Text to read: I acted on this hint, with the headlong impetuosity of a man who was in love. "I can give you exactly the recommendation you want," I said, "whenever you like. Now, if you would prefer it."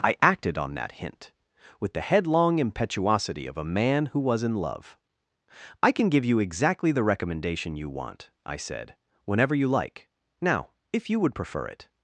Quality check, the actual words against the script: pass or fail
fail